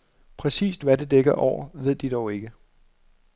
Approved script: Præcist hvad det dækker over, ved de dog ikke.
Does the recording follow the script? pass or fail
pass